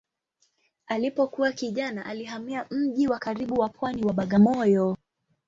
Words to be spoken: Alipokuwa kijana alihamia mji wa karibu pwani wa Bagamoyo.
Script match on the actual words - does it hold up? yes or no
no